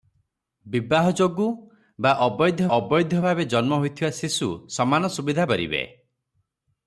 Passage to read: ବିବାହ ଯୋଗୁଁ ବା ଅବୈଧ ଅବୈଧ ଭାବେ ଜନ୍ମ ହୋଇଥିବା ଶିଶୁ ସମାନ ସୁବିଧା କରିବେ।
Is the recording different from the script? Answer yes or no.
no